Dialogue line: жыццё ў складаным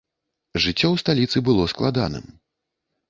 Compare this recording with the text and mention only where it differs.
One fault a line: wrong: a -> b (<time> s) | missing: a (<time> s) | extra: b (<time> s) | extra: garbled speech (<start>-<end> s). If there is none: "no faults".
extra: сталіцы было (1.0 s)